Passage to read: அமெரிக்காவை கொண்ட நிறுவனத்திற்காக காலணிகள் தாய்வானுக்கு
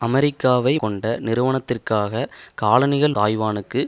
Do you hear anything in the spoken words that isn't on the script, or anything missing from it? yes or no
no